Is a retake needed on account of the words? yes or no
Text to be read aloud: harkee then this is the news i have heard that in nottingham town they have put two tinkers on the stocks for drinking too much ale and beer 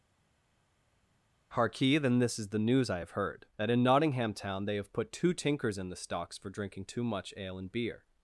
yes